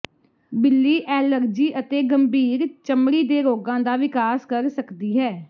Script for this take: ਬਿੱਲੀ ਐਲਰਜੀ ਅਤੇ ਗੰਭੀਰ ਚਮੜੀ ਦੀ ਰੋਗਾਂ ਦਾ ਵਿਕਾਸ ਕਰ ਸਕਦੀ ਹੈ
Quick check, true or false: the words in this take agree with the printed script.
false